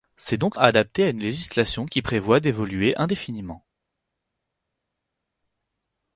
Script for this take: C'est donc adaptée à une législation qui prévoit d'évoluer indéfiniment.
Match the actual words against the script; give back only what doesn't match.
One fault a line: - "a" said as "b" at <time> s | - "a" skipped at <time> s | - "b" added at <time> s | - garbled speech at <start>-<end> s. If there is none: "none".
none